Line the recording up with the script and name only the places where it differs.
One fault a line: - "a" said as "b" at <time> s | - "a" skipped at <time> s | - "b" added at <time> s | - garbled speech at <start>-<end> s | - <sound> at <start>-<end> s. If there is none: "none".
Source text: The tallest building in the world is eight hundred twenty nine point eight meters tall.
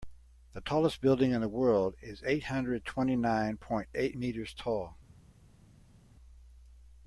none